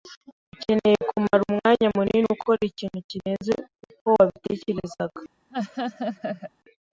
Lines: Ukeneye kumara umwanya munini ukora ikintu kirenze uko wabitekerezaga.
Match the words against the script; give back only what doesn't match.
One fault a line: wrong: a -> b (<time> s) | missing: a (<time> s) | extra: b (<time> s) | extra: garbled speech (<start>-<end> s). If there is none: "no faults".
no faults